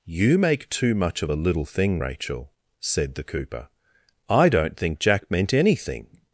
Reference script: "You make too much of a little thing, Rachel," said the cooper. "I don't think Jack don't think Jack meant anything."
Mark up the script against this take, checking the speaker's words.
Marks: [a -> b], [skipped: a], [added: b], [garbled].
"You make too much of a little thing, Rachel," said the cooper. "I don't think Jack [skipped: don't think Jack] meant anything."